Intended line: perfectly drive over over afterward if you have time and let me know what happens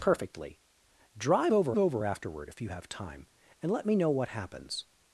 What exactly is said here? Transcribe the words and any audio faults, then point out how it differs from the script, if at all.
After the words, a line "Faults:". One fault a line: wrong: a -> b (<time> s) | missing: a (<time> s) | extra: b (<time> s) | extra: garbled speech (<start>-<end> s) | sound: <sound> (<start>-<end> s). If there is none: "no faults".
perfectly drive over over afterward if you have time and let me know what happens
Faults:
no faults